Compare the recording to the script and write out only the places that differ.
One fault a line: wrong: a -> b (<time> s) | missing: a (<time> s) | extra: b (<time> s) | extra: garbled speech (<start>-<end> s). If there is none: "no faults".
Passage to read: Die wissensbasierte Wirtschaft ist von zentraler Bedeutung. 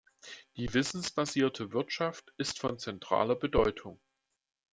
no faults